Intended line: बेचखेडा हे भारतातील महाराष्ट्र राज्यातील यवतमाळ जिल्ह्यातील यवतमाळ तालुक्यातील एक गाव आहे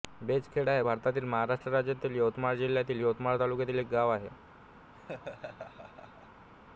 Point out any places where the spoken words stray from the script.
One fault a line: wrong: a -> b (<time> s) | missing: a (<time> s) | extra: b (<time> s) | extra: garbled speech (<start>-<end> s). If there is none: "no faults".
no faults